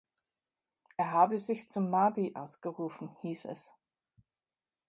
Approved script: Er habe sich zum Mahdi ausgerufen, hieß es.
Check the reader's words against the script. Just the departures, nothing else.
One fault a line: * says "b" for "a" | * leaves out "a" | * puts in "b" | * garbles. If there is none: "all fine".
all fine